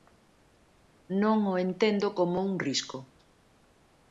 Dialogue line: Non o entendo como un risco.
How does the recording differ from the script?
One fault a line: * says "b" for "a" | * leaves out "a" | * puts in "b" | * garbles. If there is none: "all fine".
all fine